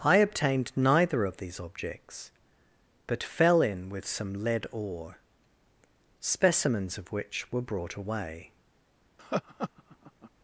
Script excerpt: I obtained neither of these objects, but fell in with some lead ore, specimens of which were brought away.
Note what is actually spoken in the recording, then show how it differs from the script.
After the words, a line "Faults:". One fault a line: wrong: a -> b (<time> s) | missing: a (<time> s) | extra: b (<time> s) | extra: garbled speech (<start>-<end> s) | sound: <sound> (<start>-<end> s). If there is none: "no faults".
I obtained neither of these objects, but fell in with some lead ore, specimens of which were brought away.
Faults:
sound: laugh (9.2-10.3 s)